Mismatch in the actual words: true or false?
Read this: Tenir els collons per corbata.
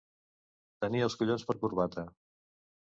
false